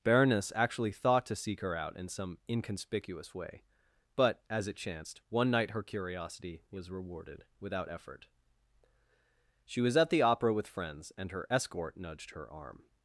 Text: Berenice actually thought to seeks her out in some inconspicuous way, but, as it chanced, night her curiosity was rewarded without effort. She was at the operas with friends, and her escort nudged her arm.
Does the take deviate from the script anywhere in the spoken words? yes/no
yes